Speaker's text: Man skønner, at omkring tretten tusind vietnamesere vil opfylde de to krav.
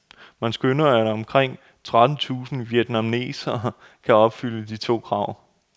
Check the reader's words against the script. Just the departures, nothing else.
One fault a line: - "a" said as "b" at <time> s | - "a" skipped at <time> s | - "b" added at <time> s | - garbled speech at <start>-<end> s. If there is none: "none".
- "vil" said as "kan" at 4.0 s